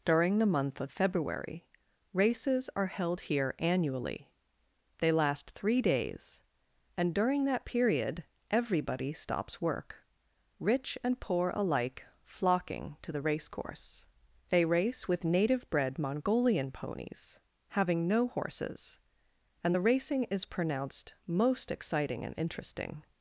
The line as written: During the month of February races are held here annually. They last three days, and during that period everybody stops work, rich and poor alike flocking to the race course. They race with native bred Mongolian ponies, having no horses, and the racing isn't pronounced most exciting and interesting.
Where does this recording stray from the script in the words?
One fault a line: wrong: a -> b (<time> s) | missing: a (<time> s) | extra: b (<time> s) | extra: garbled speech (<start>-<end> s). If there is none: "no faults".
wrong: isn't -> is (20.2 s)